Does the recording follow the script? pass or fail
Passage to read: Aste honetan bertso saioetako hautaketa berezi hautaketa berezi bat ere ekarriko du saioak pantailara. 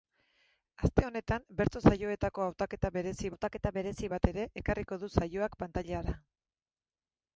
pass